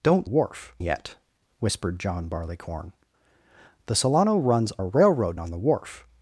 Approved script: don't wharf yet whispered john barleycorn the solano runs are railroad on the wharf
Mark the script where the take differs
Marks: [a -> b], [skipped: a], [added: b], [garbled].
don't wharf yet whispered john barleycorn the solano runs are railroad on the wharf